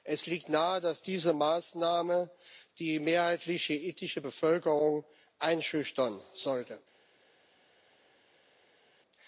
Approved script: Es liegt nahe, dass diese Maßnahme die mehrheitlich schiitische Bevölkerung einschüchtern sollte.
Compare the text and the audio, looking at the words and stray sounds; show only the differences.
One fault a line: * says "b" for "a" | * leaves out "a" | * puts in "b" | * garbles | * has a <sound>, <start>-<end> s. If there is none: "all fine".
all fine